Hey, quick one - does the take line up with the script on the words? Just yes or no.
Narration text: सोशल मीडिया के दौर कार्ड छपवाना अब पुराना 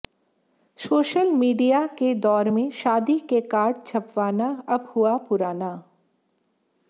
no